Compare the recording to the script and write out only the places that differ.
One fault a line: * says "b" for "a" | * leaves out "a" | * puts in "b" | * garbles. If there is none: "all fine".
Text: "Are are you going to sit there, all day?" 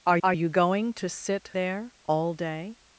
all fine